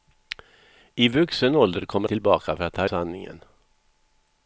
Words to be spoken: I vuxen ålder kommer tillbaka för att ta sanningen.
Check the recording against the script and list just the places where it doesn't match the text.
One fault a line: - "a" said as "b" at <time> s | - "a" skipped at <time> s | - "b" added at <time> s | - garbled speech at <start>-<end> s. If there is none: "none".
none